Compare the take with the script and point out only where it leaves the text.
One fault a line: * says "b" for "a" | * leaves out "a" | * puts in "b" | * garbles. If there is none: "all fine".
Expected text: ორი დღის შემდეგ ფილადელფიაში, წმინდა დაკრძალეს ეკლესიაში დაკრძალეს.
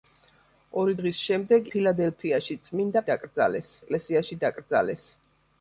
all fine